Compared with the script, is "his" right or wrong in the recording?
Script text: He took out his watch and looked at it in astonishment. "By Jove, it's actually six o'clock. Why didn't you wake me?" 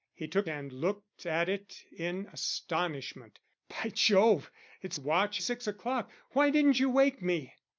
wrong